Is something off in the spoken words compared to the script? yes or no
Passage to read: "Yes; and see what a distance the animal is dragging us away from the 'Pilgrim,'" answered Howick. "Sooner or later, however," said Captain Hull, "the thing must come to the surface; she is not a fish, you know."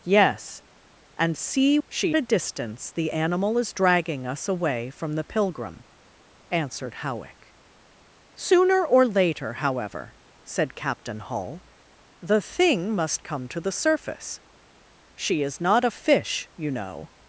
yes